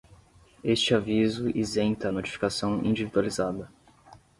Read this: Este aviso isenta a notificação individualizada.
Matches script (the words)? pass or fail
pass